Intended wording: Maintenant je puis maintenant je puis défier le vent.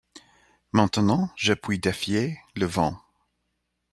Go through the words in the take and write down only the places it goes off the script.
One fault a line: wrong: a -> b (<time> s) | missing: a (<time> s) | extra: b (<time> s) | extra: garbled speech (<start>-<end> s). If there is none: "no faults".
missing: maintenant je puis (1.8 s)